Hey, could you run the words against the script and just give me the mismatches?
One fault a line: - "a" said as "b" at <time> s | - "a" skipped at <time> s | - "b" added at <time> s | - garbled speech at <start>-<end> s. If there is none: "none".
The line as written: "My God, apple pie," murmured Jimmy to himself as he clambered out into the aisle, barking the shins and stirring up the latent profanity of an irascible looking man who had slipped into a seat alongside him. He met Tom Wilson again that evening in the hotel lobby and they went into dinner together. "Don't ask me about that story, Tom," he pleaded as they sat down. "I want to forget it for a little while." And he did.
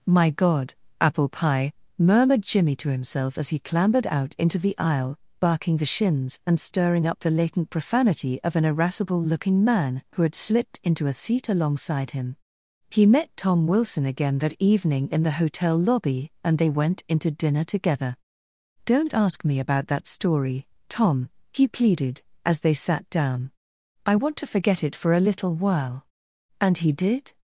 none